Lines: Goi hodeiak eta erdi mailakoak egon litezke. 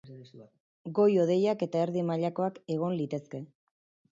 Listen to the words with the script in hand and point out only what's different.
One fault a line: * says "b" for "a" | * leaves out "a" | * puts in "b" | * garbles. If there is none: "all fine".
all fine